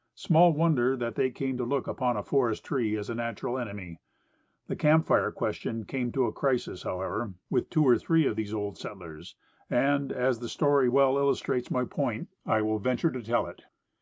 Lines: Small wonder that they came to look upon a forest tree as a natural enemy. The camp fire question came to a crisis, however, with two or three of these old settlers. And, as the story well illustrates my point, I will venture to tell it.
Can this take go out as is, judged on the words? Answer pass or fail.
pass